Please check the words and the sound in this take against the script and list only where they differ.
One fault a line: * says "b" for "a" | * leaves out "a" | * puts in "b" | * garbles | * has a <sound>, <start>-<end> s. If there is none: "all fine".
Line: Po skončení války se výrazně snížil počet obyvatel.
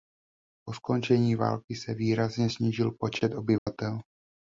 * has a dropout, 3.6-3.7 s